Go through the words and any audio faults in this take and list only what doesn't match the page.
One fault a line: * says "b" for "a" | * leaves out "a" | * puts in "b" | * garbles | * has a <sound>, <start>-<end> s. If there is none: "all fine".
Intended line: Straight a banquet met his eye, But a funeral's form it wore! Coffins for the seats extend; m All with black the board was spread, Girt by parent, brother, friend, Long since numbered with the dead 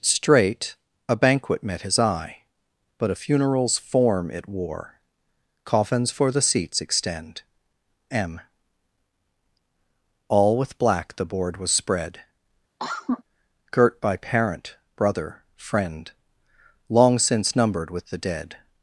* has a cough, 12.8-13.2 s